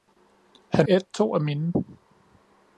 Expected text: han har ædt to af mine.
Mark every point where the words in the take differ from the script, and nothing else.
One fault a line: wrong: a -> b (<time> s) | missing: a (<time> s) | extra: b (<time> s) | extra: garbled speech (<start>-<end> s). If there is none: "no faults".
missing: har (0.9 s)